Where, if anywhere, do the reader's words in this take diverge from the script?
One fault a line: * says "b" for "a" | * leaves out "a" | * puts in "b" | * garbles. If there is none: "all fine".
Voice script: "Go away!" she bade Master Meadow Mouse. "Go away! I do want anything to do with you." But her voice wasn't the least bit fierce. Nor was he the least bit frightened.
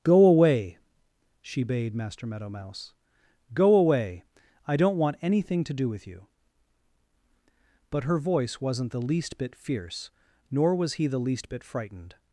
* says "don't" for "do"